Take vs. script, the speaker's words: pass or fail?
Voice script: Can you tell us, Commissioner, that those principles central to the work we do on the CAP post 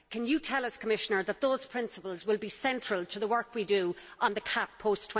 fail